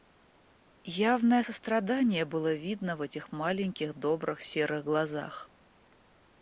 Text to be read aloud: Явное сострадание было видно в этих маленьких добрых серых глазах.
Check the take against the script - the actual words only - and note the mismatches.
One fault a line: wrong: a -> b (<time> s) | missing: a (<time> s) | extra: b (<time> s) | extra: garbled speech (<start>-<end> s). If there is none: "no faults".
no faults